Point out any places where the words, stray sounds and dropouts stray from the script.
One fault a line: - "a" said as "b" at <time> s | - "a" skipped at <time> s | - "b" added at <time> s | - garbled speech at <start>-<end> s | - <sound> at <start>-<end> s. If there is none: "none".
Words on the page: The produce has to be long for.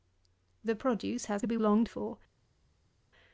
none